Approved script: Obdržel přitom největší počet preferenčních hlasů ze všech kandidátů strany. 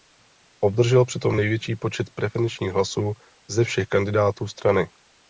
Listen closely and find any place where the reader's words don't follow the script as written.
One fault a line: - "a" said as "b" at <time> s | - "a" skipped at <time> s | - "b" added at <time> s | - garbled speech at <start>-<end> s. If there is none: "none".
none